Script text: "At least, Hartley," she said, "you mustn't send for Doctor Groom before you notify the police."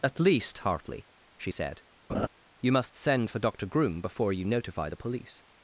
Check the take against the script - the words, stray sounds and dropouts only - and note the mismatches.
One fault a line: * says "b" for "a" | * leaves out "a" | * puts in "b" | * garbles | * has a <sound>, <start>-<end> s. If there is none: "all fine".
* has a laugh, 2.1-2.3 s
* says "must" for "mustn't"